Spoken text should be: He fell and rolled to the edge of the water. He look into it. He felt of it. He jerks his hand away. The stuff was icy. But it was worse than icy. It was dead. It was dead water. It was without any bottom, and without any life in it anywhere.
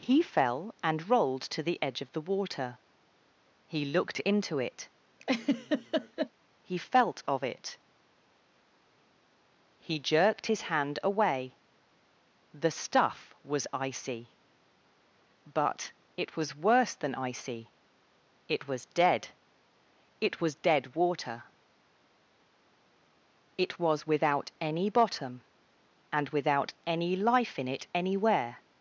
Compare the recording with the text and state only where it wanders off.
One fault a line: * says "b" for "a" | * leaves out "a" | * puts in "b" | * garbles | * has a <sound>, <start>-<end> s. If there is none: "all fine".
* says "looked" for "look"
* has a laugh, 5.2-6.3 s
* says "jerked" for "jerks"